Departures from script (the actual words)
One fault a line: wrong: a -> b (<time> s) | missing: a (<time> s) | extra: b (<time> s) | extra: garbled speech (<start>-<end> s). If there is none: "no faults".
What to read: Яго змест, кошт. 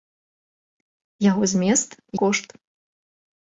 no faults